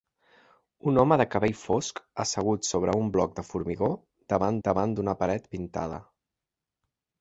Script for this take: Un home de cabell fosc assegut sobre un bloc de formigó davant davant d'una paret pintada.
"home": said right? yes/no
yes